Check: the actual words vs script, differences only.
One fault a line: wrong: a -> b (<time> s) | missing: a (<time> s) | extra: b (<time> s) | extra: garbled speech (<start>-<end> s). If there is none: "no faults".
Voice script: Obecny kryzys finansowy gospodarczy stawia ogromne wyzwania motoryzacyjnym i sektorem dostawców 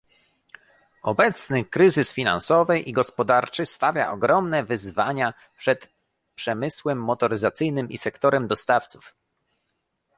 extra: i (2.8 s)
extra: przed przemysłem (5.6 s)